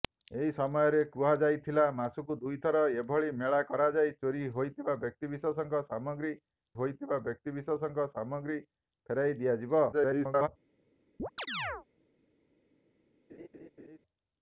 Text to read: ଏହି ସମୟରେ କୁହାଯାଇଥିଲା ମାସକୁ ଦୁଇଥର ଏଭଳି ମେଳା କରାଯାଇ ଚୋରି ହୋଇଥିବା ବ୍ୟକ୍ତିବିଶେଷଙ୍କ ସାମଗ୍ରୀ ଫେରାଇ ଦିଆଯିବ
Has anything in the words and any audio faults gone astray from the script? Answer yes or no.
yes